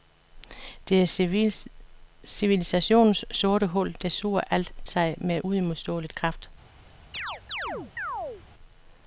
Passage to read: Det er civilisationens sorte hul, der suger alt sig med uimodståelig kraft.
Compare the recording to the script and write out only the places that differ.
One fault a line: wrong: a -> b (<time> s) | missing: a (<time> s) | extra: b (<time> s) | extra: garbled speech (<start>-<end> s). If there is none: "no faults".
no faults